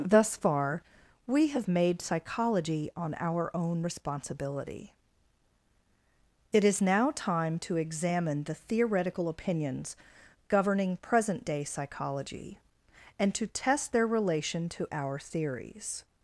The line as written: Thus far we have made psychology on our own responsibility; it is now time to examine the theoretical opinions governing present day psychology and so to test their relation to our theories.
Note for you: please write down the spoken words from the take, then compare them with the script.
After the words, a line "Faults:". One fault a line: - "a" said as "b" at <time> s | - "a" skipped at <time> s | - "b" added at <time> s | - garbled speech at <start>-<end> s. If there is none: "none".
Thus far we have made psychology on our own responsibility; it is now time to examine the theoretical opinions governing present day psychology and to test their relation to our theories.
Faults:
- "so" skipped at 13.3 s